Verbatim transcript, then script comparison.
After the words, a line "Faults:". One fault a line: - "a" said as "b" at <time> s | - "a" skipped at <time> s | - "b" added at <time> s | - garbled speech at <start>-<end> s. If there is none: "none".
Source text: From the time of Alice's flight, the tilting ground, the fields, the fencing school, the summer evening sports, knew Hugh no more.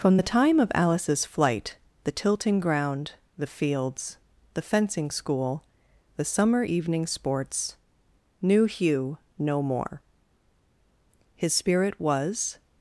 From the time of Alice's flight, the tilting ground, the fields, the fencing school, the summer evening sports, knew Hugh no more. His spirit was
Faults:
- "His spirit was" added at 11.3 s